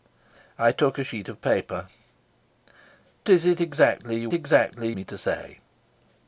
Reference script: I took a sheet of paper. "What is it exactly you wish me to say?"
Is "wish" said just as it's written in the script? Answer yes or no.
no